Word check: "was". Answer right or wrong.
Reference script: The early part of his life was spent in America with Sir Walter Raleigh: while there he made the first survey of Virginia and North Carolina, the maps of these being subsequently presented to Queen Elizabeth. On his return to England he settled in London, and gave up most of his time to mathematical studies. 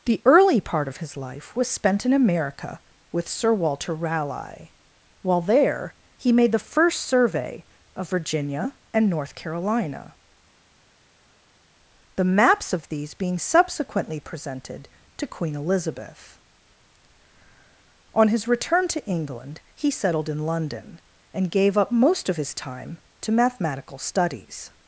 right